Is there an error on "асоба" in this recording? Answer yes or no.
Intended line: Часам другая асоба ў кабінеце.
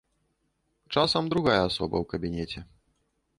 no